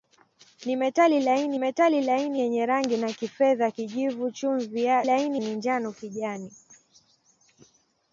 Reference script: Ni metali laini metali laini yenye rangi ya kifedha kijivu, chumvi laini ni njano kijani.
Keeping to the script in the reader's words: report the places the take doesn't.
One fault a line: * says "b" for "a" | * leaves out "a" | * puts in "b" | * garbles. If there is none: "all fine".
all fine